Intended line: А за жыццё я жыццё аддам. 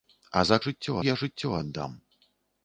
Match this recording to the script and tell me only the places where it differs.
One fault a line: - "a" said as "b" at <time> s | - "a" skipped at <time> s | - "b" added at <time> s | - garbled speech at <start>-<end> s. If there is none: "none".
none